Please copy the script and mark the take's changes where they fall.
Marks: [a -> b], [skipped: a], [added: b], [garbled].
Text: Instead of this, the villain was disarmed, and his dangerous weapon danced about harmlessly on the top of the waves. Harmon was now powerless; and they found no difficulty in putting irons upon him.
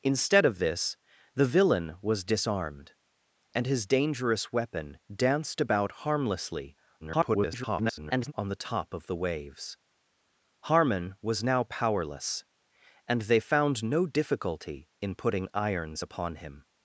Instead of this, the villain was disarmed, and his dangerous weapon danced about harmlessly [garbled] on the top of the waves. Harmon was now powerless; and they found no difficulty in putting irons upon him.